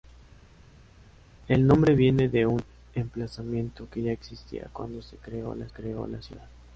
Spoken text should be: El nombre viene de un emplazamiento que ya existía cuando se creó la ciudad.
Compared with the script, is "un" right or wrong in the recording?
right